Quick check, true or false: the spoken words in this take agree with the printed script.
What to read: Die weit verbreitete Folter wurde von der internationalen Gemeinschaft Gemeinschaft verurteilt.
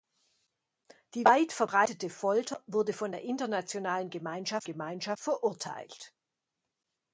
true